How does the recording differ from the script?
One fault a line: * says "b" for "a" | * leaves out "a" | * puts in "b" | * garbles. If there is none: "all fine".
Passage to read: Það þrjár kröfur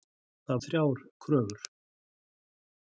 all fine